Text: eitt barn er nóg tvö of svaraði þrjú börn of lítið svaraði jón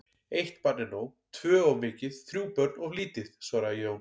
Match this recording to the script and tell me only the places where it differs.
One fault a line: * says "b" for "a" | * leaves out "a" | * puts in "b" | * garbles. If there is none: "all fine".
* says "mikið" for "svaraði"